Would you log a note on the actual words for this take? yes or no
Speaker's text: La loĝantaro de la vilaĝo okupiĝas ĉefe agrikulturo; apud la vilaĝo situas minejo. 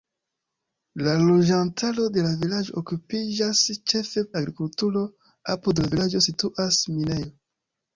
no